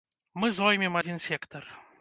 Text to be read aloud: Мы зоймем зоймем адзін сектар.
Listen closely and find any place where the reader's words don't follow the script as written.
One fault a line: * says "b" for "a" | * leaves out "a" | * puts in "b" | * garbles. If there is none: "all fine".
* leaves out "зоймем"